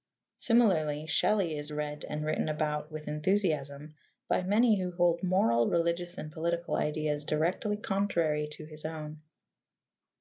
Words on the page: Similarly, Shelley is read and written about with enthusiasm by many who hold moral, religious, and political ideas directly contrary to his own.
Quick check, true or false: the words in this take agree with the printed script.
true